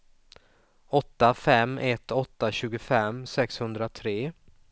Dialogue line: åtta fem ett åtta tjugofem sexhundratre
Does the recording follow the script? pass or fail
pass